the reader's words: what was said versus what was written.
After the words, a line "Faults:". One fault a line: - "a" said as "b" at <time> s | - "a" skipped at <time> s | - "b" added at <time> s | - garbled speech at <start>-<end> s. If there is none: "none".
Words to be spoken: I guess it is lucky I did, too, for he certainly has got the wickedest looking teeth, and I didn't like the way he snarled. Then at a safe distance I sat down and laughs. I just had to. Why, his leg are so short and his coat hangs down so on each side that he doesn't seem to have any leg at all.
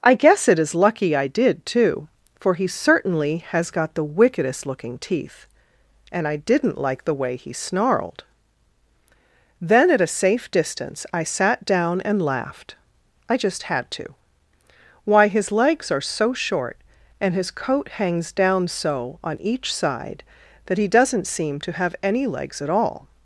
I guess it is lucky I did, too, for he certainly has got the wickedest looking teeth, and I didn't like the way he snarled. Then at a safe distance I sat down and laughed. I just had to. Why, his legs are so short and his coat hangs down so on each side that he doesn't seem to have any legs at all.
Faults:
- "laughs" said as "laughed" at 12.2 s
- "leg" said as "legs" at 15.5 s
- "leg" said as "legs" at 22.2 s